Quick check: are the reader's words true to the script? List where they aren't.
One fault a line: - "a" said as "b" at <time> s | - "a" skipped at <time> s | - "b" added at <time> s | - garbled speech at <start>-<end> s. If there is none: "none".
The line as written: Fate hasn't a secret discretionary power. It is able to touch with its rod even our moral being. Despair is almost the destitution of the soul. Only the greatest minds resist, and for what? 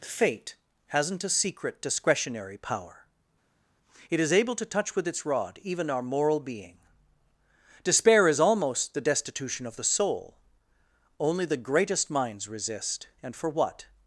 none